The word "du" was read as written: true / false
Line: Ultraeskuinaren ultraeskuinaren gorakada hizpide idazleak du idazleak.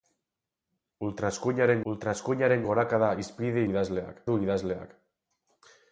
true